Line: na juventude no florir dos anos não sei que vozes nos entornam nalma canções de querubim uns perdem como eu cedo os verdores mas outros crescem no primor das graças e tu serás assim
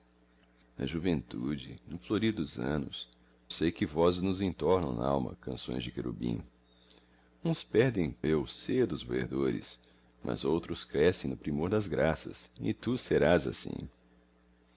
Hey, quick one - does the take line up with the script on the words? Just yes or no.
no